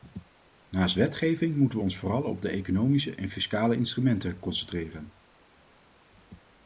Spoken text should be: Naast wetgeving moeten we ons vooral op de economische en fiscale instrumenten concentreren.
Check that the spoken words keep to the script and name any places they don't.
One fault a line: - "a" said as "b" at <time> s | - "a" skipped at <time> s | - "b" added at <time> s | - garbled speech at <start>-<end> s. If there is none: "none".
none